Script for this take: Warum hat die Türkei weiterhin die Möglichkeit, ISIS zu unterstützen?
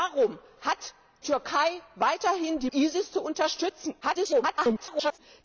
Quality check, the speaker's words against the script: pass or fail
fail